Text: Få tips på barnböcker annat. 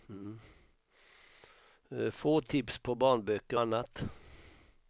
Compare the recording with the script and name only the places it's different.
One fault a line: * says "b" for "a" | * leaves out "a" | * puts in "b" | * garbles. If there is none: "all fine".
all fine